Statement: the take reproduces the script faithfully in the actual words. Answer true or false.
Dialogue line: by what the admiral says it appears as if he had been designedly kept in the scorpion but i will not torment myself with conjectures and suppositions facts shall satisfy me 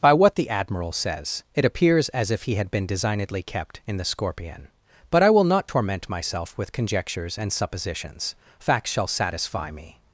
true